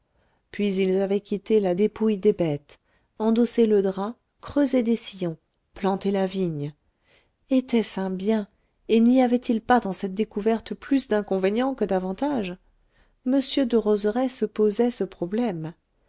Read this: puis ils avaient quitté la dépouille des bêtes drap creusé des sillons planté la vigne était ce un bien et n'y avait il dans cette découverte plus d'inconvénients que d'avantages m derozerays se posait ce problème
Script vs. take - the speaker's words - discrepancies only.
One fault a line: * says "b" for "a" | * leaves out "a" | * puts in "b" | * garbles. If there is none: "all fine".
* puts in "endossé le"
* puts in "pas"